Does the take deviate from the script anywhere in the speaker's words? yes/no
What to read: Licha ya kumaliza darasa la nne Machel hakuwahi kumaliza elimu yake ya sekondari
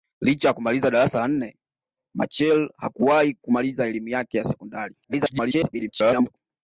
yes